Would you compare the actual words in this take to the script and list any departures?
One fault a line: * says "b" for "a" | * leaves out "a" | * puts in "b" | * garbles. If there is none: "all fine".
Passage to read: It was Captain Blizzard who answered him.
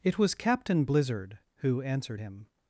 all fine